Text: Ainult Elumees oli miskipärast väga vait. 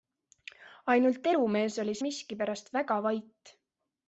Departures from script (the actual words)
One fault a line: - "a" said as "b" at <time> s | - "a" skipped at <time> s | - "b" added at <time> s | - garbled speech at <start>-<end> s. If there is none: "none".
none